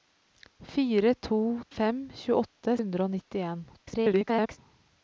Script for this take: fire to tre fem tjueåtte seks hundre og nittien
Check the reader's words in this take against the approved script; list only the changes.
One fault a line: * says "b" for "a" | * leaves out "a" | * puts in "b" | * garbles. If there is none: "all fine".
* leaves out "tre"
* leaves out "seks"
* garbles